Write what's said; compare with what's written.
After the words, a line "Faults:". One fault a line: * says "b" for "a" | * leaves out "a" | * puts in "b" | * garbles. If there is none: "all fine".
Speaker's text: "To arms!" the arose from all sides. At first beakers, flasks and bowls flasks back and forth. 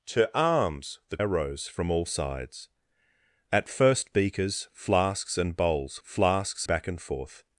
"To arms!" the arose from all sides. At first beakers, flasks and bowls flasks back and forth.
Faults:
all fine